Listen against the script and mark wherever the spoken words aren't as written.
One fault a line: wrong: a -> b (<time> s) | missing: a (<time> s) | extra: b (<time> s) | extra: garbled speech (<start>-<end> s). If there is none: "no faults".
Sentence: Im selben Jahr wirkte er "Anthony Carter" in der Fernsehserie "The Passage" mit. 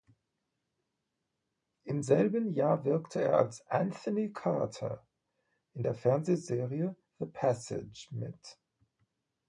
extra: als (3.4 s)